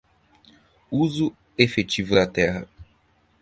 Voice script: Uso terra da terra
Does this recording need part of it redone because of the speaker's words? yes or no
yes